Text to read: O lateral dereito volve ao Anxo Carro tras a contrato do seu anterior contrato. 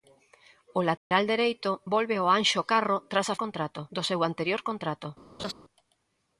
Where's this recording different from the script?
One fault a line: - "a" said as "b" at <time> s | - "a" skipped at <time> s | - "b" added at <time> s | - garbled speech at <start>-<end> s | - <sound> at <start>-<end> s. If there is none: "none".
- dropout at 1.0-1.1 s
- laugh at 5.4-5.5 s